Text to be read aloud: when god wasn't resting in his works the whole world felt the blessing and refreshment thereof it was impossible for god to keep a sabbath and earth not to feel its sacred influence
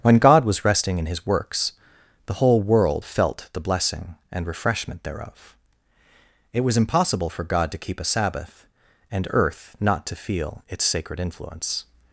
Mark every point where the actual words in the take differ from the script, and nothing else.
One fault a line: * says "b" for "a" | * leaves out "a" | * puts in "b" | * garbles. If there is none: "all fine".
* says "was" for "wasn't"